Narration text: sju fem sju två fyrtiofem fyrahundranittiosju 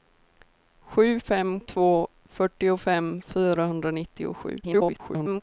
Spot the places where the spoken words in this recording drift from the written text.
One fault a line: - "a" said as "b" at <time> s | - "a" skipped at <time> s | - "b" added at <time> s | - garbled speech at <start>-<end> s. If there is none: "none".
- "sju" skipped at 1.6 s
- garbled speech at 4.6-5.4 s